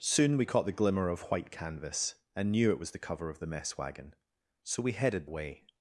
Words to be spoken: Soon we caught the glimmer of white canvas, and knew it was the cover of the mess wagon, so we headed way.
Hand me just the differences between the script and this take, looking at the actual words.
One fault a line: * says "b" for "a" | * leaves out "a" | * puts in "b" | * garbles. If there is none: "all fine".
all fine